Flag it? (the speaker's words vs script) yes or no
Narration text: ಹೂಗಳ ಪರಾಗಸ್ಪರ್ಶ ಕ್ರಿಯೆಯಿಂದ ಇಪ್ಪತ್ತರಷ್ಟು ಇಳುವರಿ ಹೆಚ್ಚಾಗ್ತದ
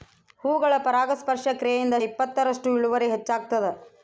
no